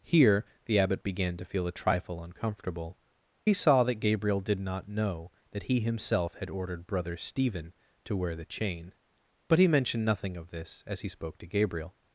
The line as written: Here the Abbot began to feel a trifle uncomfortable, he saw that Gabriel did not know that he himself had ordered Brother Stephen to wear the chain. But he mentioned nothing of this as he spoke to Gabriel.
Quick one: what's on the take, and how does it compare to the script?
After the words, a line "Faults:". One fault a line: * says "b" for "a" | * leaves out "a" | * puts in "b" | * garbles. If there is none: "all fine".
Here the Abbot began to feel a trifle uncomfortable, he saw that Gabriel did not know that he himself had ordered Brother Stephen to wear the chain. But he mentioned nothing of this as he spoke to Gabriel.
Faults:
all fine